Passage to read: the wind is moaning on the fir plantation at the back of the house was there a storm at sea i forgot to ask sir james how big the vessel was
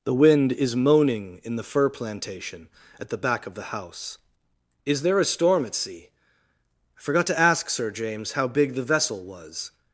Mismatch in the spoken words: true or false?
true